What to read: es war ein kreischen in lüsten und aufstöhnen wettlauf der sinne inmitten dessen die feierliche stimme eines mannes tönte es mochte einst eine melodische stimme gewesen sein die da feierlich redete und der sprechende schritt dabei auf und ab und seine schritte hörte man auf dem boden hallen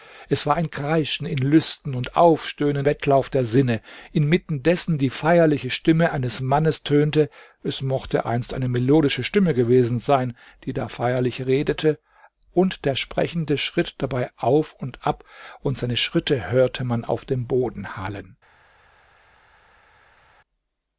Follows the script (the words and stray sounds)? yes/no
yes